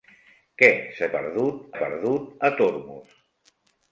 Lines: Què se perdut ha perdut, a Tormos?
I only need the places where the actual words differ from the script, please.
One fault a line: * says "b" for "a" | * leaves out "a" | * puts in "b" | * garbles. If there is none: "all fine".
all fine